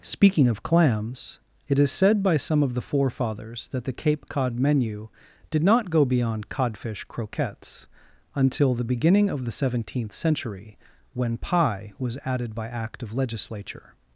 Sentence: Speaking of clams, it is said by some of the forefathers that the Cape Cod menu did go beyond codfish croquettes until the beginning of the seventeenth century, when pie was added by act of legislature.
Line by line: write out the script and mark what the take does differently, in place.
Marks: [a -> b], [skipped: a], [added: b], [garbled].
Speaking of clams, it is said by some of the forefathers that the Cape Cod menu did [added: not] go beyond codfish croquettes until the beginning of the seventeenth century, when pie was added by act of legislature.